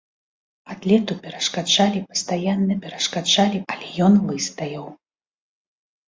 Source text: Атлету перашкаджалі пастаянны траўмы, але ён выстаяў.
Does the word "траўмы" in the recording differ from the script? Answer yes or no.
yes